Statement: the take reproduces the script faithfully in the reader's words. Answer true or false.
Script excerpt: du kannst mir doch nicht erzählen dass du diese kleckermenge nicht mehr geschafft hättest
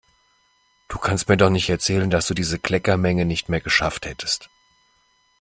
true